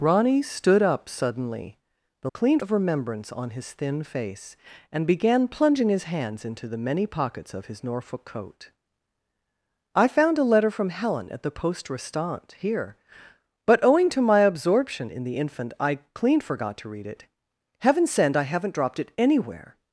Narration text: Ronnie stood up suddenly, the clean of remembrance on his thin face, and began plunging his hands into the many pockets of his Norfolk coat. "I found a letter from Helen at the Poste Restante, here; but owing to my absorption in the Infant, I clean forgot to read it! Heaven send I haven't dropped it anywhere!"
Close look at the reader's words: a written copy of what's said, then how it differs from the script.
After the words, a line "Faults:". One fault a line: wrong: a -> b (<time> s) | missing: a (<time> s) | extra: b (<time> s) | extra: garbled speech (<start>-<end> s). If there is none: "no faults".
Ronnie stood up suddenly, the clean of remembrance on his thin face, and began plunging his hands into the many pockets of his Norfolk coat. "I found a letter from Helen at the Poste Restante, here; but owing to my absorption in the Infant, I clean forgot to read it! Heaven send I haven't dropped it anywhere!"
Faults:
no faults